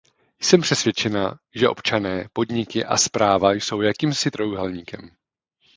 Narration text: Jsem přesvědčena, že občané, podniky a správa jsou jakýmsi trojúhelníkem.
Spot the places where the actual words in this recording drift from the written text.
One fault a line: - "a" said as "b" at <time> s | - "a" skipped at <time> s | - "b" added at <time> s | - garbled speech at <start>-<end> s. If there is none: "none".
none